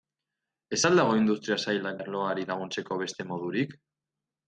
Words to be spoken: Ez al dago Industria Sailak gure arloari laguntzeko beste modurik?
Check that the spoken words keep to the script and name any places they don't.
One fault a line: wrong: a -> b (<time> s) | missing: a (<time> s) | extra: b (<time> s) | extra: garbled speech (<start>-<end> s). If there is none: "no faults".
missing: gure (2.0 s)